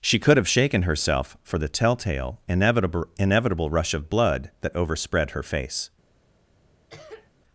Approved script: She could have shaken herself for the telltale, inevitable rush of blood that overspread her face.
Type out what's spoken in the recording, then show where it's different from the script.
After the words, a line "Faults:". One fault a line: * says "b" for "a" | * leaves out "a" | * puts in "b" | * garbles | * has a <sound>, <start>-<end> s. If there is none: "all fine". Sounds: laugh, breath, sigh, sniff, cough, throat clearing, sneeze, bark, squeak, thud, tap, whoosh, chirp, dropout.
She could have shaken herself for the telltale, inevitable inevitable rush of blood that overspread her face.
Faults:
* puts in "inevitable"
* has a cough, 6.9-7.3 s